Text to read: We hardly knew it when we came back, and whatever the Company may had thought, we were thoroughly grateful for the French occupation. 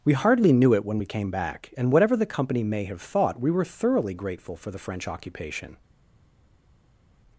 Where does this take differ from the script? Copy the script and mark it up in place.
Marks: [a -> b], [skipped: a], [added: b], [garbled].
We hardly knew it when we came back, and whatever the Company may [had -> have] thought, we were thoroughly grateful for the French occupation.